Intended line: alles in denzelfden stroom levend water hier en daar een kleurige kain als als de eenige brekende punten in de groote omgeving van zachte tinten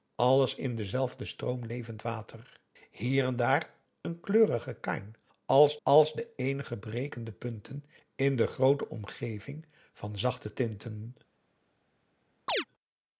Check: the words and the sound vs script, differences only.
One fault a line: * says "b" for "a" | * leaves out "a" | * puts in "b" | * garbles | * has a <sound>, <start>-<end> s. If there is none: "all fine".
* has a chirp, 12.5-12.6 s